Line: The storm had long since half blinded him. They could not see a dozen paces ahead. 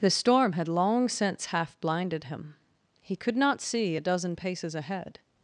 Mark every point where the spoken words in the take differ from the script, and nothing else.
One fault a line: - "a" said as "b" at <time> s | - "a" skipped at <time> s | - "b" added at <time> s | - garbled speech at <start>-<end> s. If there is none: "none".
- "They" said as "He" at 3.0 s